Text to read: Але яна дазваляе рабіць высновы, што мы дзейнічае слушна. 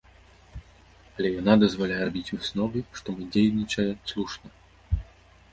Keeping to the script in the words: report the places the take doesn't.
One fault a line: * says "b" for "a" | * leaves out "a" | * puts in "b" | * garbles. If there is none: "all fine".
all fine